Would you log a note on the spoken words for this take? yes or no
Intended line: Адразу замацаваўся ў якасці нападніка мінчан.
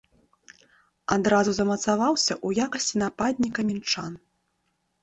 no